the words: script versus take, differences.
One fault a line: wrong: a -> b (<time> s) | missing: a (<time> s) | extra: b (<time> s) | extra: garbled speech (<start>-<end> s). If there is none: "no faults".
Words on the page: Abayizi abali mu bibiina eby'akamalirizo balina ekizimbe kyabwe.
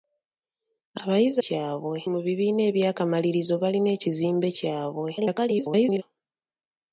wrong: abali -> kyabwe (1.4 s)
extra: garbled speech (5.2-6.0 s)